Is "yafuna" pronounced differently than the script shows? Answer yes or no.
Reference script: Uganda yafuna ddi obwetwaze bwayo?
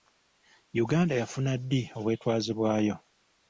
no